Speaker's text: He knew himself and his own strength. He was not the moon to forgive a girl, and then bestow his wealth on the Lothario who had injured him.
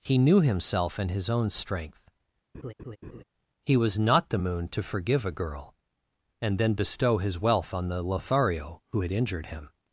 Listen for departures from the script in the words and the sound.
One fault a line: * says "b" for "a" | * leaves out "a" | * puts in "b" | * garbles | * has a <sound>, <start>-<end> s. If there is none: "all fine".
* has a laugh, 2.5-3.2 s